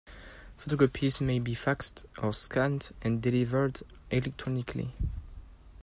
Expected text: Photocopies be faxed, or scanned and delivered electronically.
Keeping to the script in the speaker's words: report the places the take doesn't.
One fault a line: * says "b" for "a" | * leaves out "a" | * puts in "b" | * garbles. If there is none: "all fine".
* puts in "may"